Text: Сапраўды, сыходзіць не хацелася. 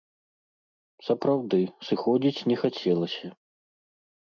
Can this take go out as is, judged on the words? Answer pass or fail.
pass